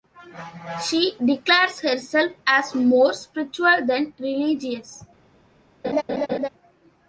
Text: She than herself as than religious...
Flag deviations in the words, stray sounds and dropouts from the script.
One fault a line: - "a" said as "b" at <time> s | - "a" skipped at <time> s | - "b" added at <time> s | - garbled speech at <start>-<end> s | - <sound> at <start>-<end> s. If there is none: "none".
- "than" said as "declares" at 1.2 s
- "more spiritual" added at 2.7 s
- laugh at 5.8-6.5 s